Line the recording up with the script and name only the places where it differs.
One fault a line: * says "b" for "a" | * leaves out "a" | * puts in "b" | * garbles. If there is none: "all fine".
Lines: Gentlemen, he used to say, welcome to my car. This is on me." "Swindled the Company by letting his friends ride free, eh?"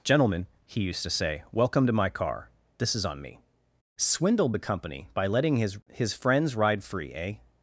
* puts in "his"